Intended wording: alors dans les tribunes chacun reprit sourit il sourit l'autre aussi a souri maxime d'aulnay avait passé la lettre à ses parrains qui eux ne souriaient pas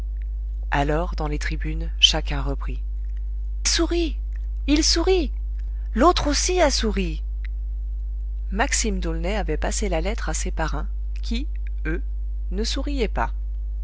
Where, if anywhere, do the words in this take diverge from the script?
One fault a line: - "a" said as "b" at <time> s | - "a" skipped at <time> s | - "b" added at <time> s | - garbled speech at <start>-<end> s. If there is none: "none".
none